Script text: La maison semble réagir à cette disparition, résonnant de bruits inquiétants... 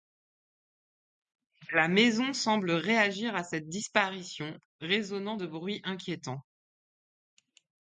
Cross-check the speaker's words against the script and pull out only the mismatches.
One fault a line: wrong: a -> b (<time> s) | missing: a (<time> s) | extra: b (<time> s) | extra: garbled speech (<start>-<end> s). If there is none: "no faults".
no faults